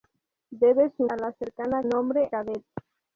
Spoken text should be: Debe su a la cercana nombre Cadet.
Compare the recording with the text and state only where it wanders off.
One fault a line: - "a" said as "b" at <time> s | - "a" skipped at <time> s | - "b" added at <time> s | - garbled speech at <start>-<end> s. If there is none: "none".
none